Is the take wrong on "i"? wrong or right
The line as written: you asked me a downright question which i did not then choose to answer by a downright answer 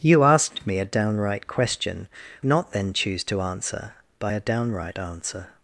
wrong